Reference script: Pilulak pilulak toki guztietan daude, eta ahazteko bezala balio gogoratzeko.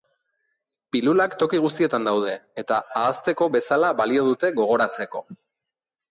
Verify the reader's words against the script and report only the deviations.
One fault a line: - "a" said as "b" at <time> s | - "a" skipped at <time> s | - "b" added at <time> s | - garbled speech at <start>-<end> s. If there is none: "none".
- "pilulak" skipped at 1.4 s
- "dute" added at 4.3 s